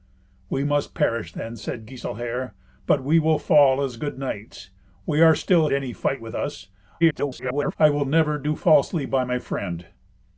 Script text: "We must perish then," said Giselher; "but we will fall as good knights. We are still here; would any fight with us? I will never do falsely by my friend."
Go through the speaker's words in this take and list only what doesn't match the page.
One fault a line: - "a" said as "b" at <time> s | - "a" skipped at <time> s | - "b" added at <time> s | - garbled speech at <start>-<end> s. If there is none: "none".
- "here would" skipped at 5.7 s
- garbled speech at 7.0-7.8 s